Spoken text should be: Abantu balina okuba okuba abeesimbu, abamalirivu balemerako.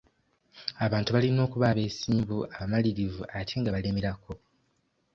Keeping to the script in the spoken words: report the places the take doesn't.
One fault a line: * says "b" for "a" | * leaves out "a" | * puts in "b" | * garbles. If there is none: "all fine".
* leaves out "okuba"
* puts in "ate nga"